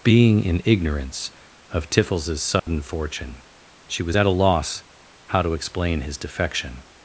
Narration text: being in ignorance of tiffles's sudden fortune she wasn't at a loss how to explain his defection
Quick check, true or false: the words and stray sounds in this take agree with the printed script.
false